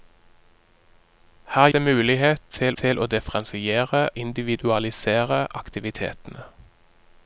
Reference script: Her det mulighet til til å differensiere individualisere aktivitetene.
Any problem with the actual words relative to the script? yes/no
no